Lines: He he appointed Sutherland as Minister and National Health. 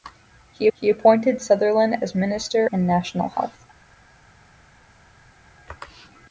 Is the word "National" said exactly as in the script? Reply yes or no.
yes